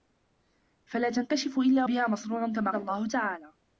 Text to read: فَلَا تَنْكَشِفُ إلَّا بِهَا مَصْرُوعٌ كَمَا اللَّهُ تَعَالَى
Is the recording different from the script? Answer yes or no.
no